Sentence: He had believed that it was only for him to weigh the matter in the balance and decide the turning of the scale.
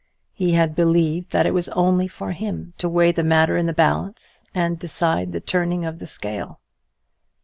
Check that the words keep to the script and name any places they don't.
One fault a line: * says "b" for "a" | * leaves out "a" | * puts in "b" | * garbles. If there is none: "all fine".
all fine